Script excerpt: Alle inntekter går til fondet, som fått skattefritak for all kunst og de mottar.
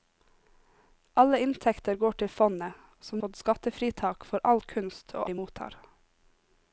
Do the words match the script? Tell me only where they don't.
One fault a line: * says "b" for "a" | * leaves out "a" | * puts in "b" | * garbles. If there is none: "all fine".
all fine